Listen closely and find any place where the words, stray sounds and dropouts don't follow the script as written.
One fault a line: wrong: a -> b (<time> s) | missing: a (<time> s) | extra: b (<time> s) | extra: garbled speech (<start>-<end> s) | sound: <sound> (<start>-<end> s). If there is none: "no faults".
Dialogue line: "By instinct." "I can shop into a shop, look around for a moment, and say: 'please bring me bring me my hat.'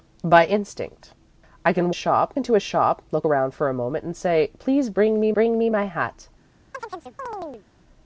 sound: chirp (6.7-7.7 s)